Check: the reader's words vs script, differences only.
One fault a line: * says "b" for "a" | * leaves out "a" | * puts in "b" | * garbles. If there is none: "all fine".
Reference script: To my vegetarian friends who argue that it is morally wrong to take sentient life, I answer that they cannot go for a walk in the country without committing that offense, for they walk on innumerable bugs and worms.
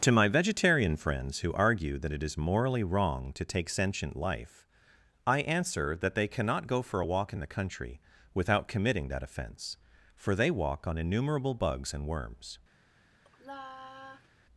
all fine